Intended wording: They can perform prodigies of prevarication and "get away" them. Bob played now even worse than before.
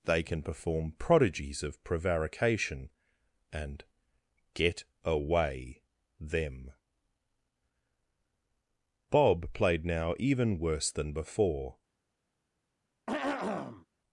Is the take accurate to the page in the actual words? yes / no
yes